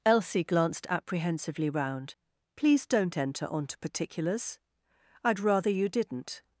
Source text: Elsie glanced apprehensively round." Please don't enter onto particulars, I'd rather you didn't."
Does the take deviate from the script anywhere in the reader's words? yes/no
no